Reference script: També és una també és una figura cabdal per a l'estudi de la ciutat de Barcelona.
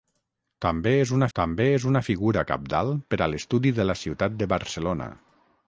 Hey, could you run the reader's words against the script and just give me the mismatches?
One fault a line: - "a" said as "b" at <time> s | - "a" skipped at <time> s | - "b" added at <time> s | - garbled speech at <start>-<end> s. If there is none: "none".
none